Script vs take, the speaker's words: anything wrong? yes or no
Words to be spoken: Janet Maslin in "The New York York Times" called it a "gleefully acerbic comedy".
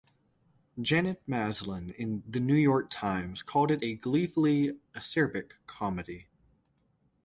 yes